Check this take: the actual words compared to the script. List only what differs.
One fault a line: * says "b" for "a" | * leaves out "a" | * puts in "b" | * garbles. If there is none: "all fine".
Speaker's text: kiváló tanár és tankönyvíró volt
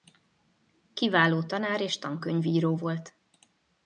all fine